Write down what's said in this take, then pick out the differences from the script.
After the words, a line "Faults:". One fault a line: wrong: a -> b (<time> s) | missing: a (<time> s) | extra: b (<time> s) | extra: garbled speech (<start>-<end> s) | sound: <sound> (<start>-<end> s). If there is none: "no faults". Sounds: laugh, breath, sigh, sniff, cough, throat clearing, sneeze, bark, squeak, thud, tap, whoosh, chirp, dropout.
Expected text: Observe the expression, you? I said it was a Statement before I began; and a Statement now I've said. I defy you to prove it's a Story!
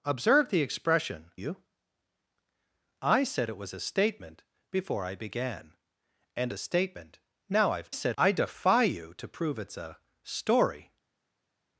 Observe the expression, you? I said it was a Statement before I began; and a Statement now I've said. I defy you to prove it's a Story!
Faults:
no faults